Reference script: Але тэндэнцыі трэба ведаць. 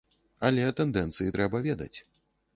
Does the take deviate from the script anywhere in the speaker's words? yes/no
no